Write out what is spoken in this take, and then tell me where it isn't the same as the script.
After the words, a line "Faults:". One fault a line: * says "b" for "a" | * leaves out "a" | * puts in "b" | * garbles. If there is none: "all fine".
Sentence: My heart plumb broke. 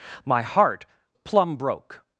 My heart plumb broke.
Faults:
all fine